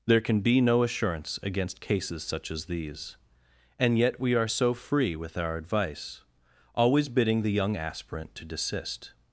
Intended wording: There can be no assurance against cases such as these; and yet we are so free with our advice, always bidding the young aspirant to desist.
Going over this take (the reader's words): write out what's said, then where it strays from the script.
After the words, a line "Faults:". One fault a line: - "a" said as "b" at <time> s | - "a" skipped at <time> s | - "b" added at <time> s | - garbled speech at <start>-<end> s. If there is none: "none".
There can be no assurance against cases such as these; and yet we are so free with our advice, always bidding the young aspirant to desist.
Faults:
none